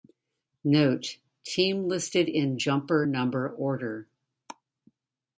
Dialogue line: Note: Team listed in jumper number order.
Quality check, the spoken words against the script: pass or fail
pass